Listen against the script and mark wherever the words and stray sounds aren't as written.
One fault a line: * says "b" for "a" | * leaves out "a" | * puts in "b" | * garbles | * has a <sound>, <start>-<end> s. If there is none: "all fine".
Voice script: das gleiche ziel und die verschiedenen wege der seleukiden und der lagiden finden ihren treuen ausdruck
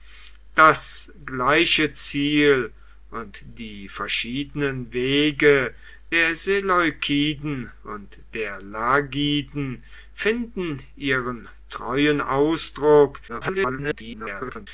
* garbles